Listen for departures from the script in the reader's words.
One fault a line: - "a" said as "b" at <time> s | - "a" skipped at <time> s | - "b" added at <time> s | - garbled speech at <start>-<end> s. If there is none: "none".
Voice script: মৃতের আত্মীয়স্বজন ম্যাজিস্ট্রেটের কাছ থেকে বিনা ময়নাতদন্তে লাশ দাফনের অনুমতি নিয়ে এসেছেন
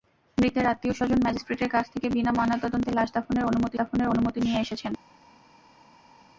- "দাফনের অনুমতি" added at 3.8 s